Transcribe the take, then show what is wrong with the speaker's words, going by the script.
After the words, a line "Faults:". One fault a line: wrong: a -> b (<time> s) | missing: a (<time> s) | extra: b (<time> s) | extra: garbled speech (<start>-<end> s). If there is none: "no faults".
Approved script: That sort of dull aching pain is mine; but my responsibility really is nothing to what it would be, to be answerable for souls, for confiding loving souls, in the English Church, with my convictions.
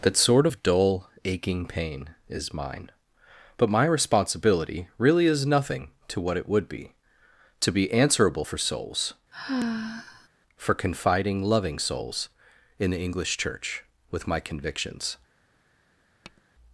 That sort of dull aching pain is mine; but my responsibility really is nothing to what it would be, to be answerable for souls, for confiding loving souls, in the English Church, with my convictions.
Faults:
no faults